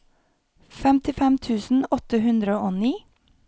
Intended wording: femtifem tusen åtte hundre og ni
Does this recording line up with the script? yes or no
yes